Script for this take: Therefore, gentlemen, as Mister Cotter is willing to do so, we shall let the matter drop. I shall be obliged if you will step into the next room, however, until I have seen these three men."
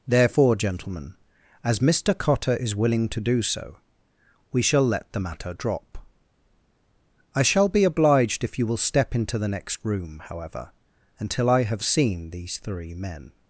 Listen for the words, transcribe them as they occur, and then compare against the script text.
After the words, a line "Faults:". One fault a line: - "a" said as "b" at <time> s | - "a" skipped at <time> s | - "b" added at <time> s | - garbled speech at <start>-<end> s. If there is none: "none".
Therefore, gentlemen, as Mister Cotter is willing to do so, we shall let the matter drop. I shall be obliged if you will step into the next room, however, until I have seen these three men."
Faults:
none